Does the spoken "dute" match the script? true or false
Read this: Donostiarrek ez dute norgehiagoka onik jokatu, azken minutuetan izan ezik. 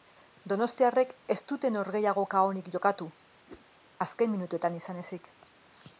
true